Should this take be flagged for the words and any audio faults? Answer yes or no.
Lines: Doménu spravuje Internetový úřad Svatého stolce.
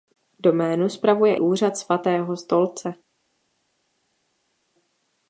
yes